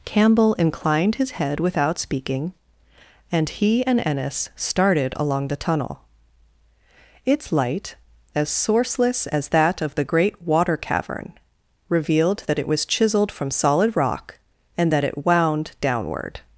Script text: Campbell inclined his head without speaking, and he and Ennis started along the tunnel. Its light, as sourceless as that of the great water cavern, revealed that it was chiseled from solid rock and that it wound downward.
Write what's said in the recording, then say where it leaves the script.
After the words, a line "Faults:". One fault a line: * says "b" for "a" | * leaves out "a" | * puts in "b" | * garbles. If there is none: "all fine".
Campbell inclined his head without speaking, and he and Ennis started along the tunnel. Its light, as sourceless as that of the great water cavern, revealed that it was chiseled from solid rock and that it wound downward.
Faults:
all fine